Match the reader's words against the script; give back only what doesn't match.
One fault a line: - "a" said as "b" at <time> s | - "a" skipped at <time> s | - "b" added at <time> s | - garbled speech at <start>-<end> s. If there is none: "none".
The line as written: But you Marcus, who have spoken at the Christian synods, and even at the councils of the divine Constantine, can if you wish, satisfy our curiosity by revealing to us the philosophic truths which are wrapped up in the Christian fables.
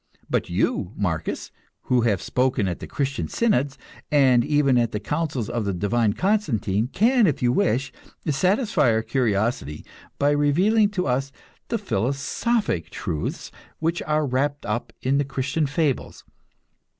none